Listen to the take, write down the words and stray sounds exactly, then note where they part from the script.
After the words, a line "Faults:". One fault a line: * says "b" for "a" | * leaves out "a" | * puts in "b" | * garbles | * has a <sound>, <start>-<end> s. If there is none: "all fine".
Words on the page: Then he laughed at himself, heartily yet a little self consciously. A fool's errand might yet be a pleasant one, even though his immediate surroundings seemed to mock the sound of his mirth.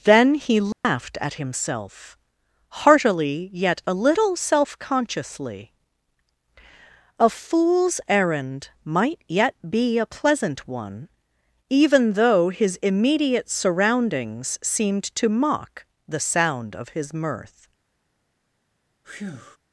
Then he laughed at himself, heartily yet a little self consciously. A fool's errand might yet be a pleasant one, even though his immediate surroundings seemed to mock the sound of his mirth.
Faults:
* has a dropout, 0.7-0.8 s
* has a breath, 19.0-19.6 s